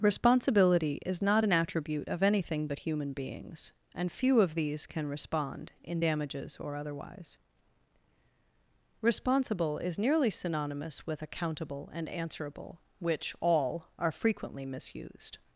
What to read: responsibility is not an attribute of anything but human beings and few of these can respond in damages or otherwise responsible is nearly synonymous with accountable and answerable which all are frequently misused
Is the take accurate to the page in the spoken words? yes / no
yes